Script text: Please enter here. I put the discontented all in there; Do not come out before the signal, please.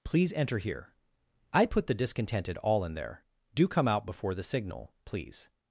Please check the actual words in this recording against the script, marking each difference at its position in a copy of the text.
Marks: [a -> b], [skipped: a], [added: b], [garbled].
Please enter here. I put the discontented all in there; Do [skipped: not] come out before the signal, please.